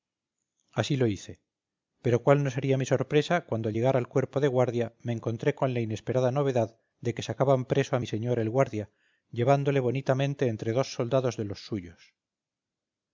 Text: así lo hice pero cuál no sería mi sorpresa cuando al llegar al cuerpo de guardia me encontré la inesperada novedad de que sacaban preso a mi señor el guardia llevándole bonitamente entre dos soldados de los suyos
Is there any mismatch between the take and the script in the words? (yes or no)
yes